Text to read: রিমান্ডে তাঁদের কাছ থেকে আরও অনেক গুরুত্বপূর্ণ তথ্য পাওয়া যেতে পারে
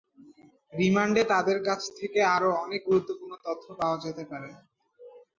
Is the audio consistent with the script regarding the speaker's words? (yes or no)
yes